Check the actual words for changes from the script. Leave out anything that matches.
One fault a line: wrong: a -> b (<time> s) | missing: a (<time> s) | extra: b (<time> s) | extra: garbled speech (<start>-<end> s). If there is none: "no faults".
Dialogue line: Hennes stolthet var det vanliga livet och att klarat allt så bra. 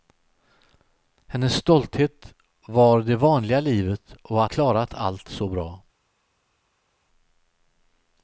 no faults